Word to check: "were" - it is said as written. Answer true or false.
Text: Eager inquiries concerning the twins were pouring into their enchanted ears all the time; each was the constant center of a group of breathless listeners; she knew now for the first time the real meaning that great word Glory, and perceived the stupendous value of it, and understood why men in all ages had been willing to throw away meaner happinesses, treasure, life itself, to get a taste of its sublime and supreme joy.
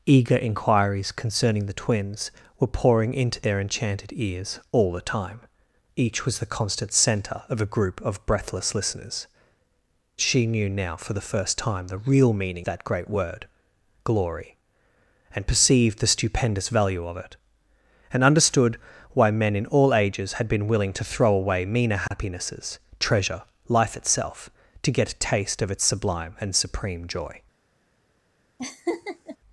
true